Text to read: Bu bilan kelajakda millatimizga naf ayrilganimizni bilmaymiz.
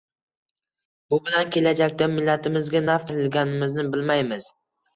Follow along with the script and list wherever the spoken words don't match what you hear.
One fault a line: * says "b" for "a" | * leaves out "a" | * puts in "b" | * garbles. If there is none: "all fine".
all fine